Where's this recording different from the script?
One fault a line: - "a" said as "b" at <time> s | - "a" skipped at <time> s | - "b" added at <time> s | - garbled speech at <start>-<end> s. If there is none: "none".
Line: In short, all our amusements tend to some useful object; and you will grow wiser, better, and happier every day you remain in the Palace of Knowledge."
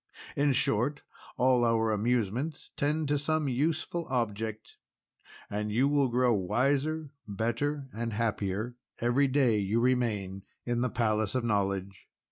none